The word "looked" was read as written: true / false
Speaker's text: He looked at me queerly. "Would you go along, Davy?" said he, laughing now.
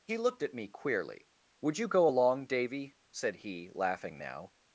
true